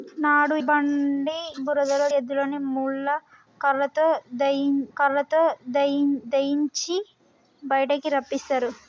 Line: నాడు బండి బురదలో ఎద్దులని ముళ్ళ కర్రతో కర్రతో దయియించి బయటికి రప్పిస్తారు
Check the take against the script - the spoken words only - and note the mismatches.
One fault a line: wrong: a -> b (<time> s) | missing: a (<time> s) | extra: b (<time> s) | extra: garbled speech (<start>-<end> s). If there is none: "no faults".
no faults